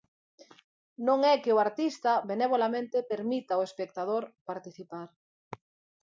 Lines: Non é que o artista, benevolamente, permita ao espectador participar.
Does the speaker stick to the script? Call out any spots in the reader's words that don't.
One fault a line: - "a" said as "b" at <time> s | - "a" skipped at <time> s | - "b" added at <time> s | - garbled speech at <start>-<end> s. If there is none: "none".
none